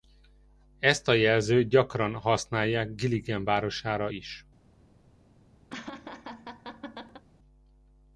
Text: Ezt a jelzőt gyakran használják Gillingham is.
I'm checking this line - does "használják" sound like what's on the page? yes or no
yes